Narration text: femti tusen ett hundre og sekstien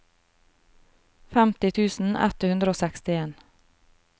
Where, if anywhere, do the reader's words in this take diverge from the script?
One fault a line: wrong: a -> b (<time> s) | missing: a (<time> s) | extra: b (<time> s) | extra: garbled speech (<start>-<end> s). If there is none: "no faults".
no faults